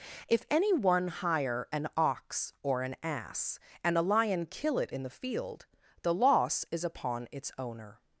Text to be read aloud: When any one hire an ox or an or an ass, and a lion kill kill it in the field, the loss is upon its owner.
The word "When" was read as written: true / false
false